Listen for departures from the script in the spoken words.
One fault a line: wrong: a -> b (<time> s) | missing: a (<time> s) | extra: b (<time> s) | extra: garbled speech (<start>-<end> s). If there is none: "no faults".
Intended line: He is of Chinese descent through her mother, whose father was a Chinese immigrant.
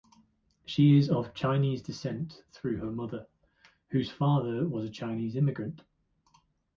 wrong: He -> She (0.7 s)